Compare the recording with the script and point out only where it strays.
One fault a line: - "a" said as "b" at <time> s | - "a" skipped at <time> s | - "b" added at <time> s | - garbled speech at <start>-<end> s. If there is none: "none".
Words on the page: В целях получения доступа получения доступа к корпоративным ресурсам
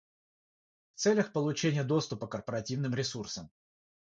- "получения доступа" skipped at 2.3 s